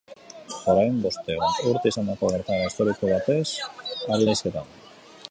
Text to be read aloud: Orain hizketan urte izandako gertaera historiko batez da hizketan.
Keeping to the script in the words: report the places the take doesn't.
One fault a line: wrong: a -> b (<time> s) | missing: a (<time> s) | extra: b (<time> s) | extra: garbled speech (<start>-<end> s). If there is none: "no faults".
wrong: hizketan -> bostehun (1.0 s)
extra: ari (4.2 s)